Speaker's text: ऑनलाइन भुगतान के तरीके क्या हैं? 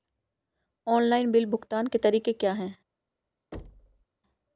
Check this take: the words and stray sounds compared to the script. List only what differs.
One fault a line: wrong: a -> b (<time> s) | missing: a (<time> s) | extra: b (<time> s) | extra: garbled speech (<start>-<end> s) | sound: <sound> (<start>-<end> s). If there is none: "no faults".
extra: बिल (1.3 s)
sound: thud (3.5-4.0 s)